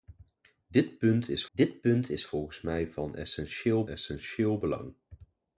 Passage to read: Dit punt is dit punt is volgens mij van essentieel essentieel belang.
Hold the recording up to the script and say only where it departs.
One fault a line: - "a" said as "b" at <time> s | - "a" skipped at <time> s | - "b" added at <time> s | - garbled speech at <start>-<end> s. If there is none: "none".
none